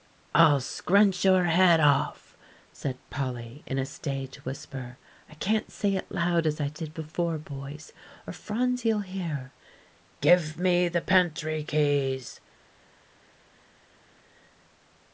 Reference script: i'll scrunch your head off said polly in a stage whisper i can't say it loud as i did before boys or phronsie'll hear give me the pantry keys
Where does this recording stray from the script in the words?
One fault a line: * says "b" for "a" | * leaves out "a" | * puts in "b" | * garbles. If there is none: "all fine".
all fine